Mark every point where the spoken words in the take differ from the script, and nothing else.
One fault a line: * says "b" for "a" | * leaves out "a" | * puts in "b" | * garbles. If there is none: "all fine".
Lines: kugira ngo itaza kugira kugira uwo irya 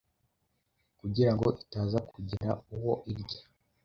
* leaves out "kugira"